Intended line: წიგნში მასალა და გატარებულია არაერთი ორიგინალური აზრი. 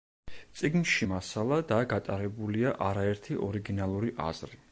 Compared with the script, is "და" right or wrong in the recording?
right